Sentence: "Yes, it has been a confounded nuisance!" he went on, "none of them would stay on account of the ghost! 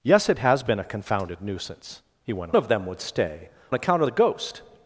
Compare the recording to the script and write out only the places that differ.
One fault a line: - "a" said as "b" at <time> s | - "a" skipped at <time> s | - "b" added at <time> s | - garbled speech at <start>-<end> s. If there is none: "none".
- "on none" skipped at 2.5 s
- "on" skipped at 3.5 s